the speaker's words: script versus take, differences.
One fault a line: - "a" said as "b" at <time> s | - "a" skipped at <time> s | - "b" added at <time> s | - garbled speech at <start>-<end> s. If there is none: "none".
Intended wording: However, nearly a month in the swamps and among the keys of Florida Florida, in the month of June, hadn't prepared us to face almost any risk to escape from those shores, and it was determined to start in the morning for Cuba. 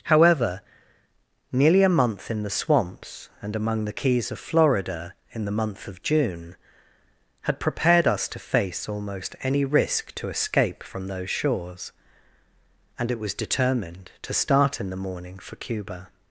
- "Florida" skipped at 5.1 s
- "hadn't" said as "had" at 7.4 s